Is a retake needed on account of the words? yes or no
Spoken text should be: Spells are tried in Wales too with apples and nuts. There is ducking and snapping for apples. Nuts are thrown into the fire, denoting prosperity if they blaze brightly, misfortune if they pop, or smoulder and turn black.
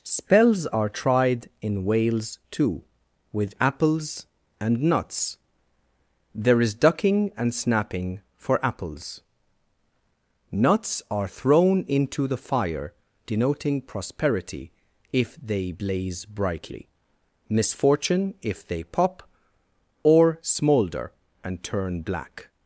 no